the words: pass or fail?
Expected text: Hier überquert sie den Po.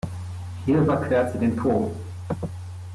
pass